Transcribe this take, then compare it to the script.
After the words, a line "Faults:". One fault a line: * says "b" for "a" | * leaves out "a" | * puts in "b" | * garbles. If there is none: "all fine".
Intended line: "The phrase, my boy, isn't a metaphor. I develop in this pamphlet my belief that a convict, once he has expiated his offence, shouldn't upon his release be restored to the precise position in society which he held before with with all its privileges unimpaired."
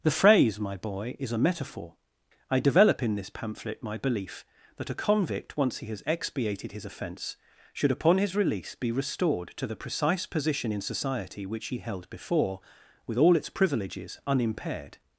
"The phrase, my boy, is a metaphor. I develop in this pamphlet my belief that a convict, once he has expiated his offence, should upon his release be restored to the precise position in society which he held before with all its privileges unimpaired."
Faults:
* says "is" for "isn't"
* says "should" for "shouldn't"
* leaves out "with"